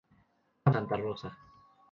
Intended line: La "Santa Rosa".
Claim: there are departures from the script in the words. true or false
false